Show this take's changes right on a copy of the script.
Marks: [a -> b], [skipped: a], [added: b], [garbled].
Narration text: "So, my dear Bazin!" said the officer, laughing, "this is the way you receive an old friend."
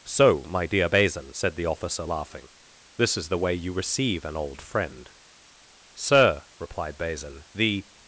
"So, my dear Bazin!" said the officer, laughing, "this is the way you receive an old friend." [added: Sir replied Bazin the]